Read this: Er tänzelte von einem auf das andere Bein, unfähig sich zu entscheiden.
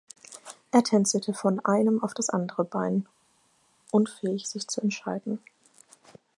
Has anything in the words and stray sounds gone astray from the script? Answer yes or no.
no